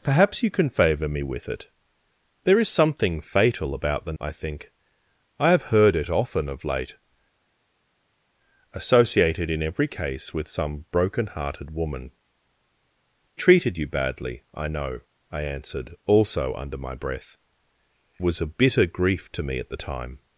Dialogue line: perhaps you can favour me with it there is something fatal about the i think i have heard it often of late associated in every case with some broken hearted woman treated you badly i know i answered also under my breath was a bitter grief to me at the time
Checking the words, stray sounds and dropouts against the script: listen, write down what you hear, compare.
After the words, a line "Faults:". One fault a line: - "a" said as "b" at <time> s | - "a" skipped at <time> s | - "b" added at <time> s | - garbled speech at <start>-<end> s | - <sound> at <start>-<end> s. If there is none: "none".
perhaps you can favour me with it there is something fatal about the i think i have heard it often of late associated in every case with some broken hearted woman treated you badly i know i answered also under my breath was a bitter grief to me at the time
Faults:
none